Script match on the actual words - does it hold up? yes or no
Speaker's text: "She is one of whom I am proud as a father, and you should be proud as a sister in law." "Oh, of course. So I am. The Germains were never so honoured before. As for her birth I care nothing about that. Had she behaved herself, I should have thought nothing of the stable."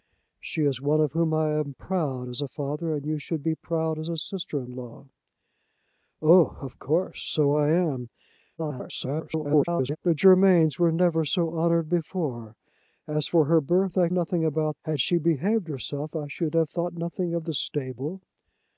no